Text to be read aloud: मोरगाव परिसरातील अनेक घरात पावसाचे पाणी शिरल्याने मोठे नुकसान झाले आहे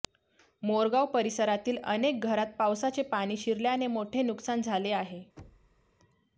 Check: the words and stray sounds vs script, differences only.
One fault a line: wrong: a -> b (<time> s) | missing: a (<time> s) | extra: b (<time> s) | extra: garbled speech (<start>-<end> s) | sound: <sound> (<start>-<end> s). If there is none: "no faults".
sound: thud (5.4-5.9 s)